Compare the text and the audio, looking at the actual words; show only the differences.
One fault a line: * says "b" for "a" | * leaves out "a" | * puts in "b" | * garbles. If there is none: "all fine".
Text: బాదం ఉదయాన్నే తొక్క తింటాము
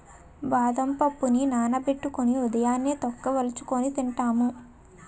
* puts in "పప్పుని నానబెట్టుకొని"
* puts in "వలుచుకొని"